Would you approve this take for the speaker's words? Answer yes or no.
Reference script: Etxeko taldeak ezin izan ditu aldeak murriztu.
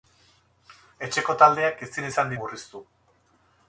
no